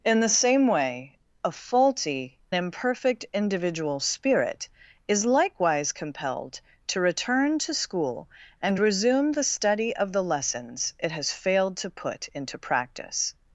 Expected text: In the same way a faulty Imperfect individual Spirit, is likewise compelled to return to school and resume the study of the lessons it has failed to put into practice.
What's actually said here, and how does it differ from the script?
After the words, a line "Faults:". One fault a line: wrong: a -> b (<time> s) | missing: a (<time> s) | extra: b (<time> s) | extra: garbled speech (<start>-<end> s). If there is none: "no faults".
In the same way a faulty Imperfect individual Spirit, is likewise compelled to return to school and resume the study of the lessons it has failed to put into practice.
Faults:
no faults